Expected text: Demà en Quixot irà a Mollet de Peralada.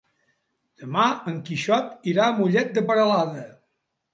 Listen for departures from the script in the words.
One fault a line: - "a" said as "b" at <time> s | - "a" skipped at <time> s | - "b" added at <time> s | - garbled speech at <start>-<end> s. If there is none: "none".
none